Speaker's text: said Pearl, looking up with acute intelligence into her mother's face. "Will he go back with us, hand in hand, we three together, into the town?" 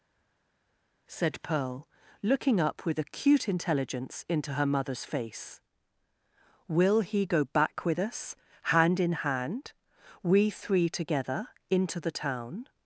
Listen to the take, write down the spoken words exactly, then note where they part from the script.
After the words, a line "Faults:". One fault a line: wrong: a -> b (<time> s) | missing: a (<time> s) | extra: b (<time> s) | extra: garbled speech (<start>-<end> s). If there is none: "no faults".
said Pearl, looking up with acute intelligence into her mother's face. "Will he go back with us, hand in hand, we three together, into the town?"
Faults:
no faults